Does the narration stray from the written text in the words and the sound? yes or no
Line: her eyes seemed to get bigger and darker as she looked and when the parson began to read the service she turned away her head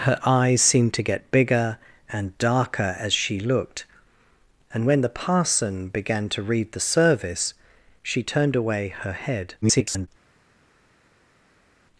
yes